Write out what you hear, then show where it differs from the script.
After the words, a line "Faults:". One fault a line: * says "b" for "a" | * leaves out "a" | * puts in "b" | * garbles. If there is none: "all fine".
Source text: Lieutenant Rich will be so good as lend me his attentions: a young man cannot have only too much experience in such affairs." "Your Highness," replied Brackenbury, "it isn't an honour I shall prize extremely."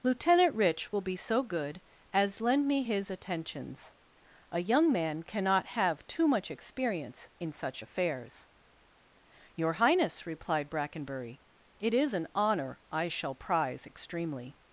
Lieutenant Rich will be so good as lend me his attentions: a young man cannot have too much experience in such affairs." "Your Highness," replied Brackenbury, "it is an honour I shall prize extremely."
Faults:
* leaves out "only"
* says "is" for "isn't"